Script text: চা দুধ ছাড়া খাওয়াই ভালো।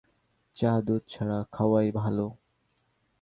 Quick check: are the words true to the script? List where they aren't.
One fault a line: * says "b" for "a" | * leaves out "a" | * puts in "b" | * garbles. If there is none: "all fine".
all fine